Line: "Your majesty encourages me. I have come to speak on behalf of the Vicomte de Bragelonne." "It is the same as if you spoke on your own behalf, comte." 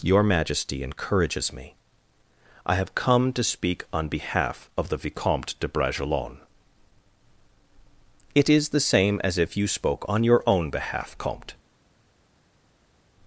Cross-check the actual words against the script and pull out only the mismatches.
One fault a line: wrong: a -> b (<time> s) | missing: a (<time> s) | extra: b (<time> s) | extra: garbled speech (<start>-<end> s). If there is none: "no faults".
no faults